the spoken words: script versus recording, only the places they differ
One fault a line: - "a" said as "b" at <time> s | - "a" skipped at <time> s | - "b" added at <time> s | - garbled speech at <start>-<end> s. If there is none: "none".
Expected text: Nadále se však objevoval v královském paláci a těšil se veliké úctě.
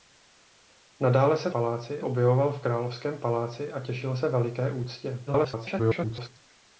- "však" said as "paláci" at 1.5 s
- garbled speech at 5.3-6.3 s